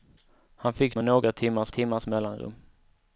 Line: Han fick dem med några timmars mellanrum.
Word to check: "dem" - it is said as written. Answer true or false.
false